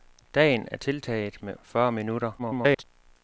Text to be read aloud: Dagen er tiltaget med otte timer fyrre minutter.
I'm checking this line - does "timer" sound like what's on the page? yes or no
no